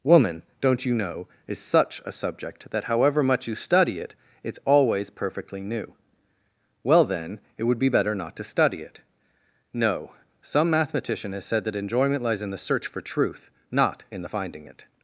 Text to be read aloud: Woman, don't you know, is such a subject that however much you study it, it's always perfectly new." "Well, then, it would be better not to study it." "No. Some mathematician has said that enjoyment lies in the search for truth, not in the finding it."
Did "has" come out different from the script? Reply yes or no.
no